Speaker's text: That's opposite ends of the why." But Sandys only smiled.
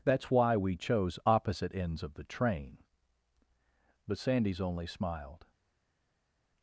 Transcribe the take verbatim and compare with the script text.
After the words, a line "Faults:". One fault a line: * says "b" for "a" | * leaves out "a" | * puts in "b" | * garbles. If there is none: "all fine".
That's why we chose opposite ends of the train." But Sandys only smiled.
Faults:
* puts in "why we chose"
* says "train" for "why"